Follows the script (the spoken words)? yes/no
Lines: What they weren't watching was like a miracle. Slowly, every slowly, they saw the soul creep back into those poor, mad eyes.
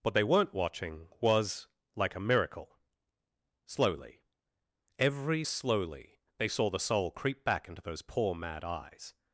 yes